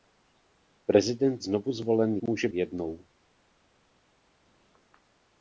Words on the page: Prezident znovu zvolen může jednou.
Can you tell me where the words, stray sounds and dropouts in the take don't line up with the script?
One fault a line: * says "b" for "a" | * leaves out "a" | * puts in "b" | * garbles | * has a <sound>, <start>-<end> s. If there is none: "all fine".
all fine